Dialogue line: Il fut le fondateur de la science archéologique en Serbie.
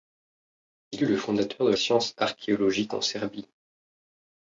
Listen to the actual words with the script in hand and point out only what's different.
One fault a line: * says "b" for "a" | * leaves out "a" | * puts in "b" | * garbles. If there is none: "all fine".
* leaves out "fut"
* leaves out "la"